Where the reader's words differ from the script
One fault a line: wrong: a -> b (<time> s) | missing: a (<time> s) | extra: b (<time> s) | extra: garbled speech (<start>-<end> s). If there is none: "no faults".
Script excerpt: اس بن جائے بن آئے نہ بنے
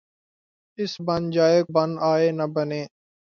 no faults